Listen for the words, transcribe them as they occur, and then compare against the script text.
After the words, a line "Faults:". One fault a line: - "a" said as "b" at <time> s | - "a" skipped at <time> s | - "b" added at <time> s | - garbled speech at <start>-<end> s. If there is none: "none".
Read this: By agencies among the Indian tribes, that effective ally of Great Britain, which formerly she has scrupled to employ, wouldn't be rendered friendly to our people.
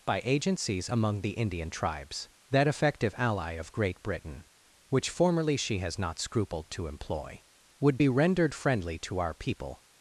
By agencies among the Indian tribes, that effective ally of Great Britain, which formerly she has not scrupled to employ, would be rendered friendly to our people.
Faults:
- "not" added at 6.0 s
- "wouldn't" said as "would" at 7.8 s